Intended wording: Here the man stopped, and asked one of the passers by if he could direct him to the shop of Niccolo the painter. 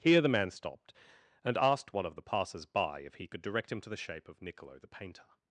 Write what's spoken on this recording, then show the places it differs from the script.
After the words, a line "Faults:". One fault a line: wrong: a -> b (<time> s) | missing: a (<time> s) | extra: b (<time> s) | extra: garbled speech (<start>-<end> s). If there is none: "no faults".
Here the man stopped, and asked one of the passers by if he could direct him to the shape of Niccolo the painter.
Faults:
wrong: shop -> shape (4.0 s)